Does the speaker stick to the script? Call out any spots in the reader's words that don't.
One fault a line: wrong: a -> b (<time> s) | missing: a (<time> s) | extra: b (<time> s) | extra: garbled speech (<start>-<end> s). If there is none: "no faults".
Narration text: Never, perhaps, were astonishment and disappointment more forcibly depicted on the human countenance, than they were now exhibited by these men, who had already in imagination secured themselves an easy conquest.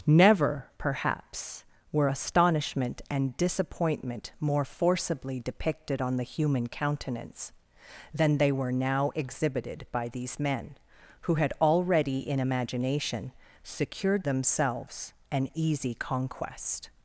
no faults